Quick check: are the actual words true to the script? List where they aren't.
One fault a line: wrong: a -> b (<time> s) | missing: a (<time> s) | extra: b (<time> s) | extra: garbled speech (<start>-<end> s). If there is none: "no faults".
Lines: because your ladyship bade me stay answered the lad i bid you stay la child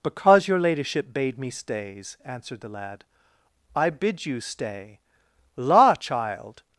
wrong: stay -> stays (1.5 s)